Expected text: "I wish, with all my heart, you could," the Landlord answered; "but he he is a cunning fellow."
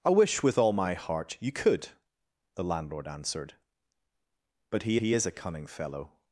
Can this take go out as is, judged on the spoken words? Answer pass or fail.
pass